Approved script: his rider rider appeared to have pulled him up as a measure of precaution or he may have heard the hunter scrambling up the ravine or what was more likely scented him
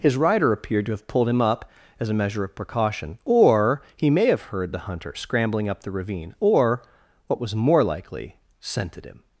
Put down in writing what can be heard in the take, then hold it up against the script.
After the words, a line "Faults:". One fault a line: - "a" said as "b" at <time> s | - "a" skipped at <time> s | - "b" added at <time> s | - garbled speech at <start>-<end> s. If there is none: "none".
his rider appeared to have pulled him up as a measure of precaution or he may have heard the hunter scrambling up the ravine or what was more likely scented him
Faults:
- "rider" skipped at 0.5 s